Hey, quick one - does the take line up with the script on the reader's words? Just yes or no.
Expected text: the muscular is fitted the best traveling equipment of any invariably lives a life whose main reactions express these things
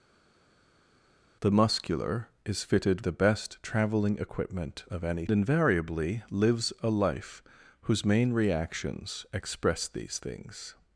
yes